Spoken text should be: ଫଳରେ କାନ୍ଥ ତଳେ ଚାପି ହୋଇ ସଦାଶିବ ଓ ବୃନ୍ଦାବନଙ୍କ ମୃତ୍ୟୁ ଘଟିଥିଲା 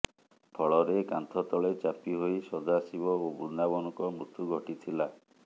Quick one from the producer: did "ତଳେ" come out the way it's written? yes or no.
yes